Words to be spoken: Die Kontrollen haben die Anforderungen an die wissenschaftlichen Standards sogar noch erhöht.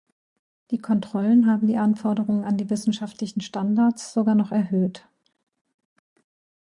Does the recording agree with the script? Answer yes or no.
yes